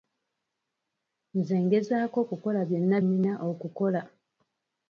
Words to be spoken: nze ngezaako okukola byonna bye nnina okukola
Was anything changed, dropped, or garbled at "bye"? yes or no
yes